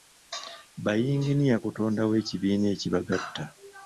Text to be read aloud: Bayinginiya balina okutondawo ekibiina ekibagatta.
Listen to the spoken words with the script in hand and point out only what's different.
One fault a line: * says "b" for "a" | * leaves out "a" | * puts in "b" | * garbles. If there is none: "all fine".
* leaves out "balina"